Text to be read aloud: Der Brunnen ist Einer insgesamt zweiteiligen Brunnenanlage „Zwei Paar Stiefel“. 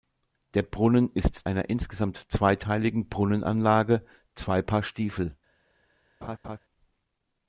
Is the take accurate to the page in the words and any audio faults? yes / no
no